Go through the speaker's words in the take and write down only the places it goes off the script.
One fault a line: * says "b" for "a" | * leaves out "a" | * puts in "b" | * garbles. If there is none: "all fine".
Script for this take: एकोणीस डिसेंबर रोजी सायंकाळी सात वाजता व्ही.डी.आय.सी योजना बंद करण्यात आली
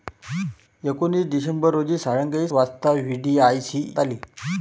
* leaves out "सात"
* leaves out "योजना बंद करण्यात"